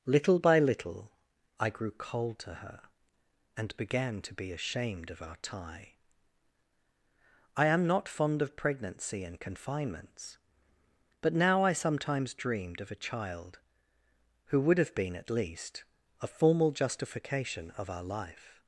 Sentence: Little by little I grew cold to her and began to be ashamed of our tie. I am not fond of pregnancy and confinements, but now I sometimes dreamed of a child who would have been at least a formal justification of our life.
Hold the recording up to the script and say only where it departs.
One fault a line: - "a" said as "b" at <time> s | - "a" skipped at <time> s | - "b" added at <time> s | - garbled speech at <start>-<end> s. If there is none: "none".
none